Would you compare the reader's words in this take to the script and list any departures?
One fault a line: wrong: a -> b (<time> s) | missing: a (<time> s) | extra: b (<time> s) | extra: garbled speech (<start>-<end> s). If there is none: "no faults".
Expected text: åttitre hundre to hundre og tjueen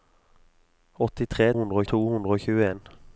no faults